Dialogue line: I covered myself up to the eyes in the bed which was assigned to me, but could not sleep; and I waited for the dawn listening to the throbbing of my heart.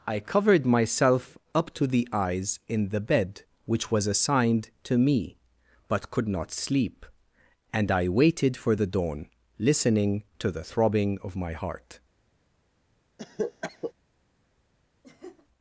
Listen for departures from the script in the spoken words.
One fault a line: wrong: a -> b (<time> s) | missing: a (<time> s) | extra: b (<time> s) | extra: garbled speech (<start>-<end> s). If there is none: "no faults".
no faults